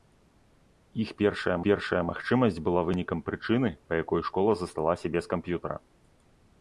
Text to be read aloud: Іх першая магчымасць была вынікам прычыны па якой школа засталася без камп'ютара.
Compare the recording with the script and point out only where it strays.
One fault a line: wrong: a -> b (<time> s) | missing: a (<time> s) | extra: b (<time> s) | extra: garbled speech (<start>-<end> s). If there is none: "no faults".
extra: першая (1.6 s)